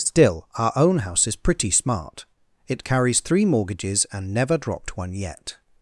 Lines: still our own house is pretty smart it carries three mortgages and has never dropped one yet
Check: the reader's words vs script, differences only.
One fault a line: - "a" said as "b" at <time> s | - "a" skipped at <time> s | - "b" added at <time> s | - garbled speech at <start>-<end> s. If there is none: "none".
- "has" skipped at 4.3 s